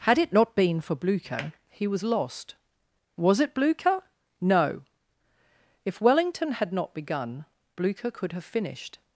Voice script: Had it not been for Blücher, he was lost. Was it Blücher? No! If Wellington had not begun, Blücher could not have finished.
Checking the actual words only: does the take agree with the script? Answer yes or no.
no